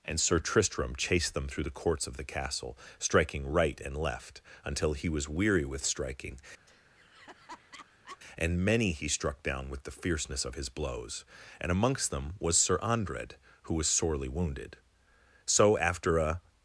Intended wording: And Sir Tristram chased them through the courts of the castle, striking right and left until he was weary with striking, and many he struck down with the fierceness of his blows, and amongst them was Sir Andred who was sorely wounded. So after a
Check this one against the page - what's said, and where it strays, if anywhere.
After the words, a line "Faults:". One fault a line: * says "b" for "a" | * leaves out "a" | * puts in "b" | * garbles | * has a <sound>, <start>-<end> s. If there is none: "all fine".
And Sir Tristram chased them through the courts of the castle, striking right and left until he was weary with striking, and many he struck down with the fierceness of his blows, and amongst them was Sir Andred who was sorely wounded. So after a
Faults:
* has a laugh, 6.7-8.2 s